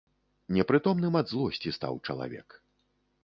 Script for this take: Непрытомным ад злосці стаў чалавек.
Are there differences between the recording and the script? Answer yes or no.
no